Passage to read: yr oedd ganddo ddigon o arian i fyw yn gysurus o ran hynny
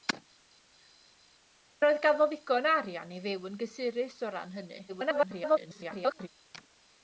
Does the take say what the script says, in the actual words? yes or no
no